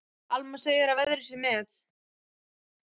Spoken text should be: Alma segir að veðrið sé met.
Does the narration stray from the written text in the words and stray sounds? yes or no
no